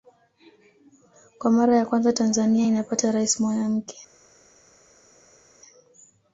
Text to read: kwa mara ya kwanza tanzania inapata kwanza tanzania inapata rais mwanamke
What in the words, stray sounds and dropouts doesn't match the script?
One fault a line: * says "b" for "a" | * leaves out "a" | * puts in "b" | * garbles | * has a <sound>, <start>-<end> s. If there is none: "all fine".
* leaves out "kwanza tanzania inapata"